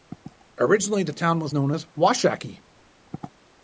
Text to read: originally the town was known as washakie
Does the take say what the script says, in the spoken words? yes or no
yes